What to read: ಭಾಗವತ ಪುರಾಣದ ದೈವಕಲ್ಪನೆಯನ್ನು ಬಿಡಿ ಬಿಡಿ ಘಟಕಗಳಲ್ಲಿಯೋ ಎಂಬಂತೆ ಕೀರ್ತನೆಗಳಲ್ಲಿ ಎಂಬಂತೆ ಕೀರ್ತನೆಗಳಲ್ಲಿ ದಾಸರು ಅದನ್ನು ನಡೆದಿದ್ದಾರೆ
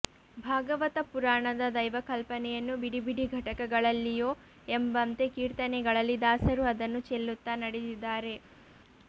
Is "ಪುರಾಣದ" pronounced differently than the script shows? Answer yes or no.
no